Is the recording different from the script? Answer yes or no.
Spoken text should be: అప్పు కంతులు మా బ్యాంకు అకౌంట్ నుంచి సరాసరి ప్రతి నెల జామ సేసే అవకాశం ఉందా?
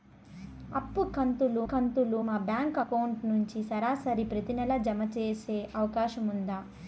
yes